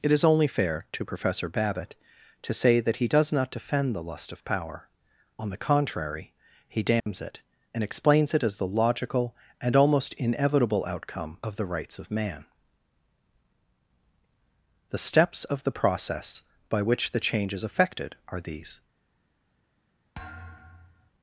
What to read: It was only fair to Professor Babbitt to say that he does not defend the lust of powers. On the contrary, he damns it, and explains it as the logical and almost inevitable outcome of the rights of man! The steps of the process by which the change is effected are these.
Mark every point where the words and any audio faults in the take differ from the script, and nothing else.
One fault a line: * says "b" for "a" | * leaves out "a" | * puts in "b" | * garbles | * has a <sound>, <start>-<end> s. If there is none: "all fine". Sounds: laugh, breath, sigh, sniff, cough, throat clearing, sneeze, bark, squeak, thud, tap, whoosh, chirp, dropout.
* says "is" for "was"
* says "power" for "powers"
* has a dropout, 7.0-7.1 s
* has a thud, 20.1-21.1 s